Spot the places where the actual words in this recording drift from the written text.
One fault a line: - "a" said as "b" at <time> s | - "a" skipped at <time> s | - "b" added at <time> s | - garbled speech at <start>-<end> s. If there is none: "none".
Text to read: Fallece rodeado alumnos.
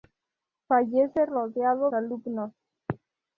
none